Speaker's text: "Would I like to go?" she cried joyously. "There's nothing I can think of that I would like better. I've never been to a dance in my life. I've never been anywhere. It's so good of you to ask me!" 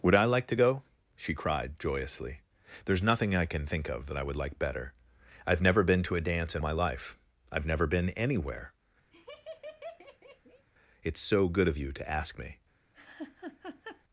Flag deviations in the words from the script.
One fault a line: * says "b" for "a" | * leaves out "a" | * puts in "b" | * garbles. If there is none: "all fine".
all fine